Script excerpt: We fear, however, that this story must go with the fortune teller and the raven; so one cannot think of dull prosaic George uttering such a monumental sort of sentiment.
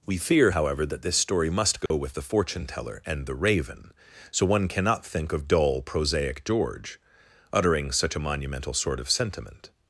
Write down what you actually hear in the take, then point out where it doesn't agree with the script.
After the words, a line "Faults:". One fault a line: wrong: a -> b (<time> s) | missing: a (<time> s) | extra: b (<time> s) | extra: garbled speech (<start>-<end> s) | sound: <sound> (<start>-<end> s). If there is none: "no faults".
We fear, however, that this story must go with the fortune teller and the raven; so one cannot think of dull prosaic George uttering such a monumental sort of sentiment.
Faults:
sound: dropout (1.9-1.9 s)